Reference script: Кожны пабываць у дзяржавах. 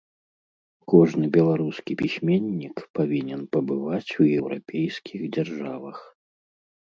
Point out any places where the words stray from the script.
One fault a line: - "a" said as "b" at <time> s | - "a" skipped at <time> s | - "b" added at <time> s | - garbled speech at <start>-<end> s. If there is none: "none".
- "беларускі пісьменнік павінен" added at 1.4 s
- "еўрапейскіх" added at 4.4 s